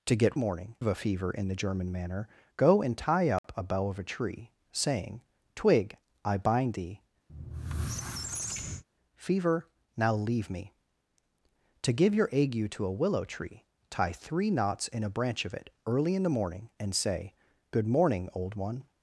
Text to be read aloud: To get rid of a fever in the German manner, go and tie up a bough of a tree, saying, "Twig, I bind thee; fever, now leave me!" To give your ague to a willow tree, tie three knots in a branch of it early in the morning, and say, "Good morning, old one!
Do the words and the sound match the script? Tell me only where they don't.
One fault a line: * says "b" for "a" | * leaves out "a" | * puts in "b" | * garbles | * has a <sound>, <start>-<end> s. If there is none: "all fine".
* says "morning" for "rid"
* has a dropout, 3.4-3.4 s
* has a squeak, 7.3-8.8 s